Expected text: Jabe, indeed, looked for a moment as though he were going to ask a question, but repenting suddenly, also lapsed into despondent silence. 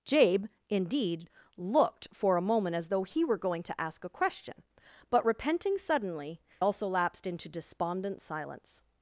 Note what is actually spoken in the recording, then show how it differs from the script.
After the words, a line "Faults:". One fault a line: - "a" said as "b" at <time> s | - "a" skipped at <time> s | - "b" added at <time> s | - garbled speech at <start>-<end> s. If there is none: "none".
Jabe, indeed, looked for a moment as though he were going to ask a question, but repenting suddenly, also lapsed into despondent silence.
Faults:
none